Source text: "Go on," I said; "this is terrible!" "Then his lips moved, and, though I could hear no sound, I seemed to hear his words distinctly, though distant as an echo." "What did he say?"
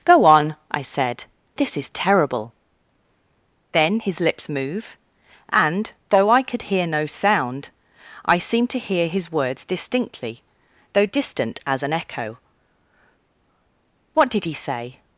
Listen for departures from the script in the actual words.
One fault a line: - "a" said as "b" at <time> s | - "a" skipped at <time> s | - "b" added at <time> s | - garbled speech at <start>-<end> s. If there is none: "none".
- "moved" said as "move" at 4.5 s